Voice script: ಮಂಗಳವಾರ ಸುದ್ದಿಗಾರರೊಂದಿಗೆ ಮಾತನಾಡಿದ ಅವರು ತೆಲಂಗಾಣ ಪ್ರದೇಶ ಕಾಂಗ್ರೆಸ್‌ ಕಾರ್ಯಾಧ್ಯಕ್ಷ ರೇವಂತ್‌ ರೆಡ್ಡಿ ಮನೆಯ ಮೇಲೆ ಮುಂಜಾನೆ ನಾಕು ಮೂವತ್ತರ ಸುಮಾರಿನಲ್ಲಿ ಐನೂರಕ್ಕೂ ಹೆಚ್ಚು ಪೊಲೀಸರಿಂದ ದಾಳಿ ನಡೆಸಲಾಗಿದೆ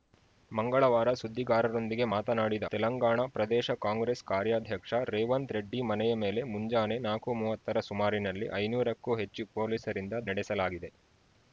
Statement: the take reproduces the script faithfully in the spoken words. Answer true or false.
false